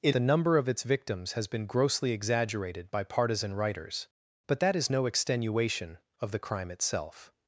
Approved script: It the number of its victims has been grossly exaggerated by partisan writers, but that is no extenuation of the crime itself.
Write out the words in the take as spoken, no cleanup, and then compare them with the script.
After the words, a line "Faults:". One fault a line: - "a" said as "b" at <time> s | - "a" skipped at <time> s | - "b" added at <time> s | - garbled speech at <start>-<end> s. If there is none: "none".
It the number of its victims has been grossly exaggerated by partisan writers, but that is no extenuation of the crime itself.
Faults:
none